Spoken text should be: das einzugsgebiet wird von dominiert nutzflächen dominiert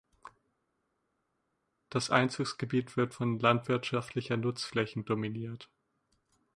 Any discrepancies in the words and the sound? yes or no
yes